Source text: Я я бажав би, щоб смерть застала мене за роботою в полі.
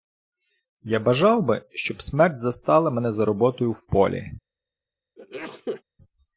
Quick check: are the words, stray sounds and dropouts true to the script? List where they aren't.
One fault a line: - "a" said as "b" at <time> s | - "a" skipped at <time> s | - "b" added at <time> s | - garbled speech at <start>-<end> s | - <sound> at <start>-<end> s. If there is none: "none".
- "я" skipped at 1.0 s
- sneeze at 5.2-5.8 s